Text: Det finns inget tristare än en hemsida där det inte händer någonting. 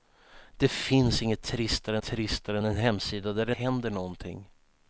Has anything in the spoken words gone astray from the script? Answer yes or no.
yes